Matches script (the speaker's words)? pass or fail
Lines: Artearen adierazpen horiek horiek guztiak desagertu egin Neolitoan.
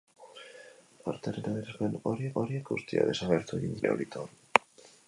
pass